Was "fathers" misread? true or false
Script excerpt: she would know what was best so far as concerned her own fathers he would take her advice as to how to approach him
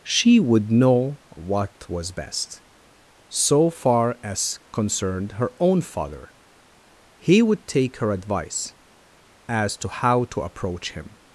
true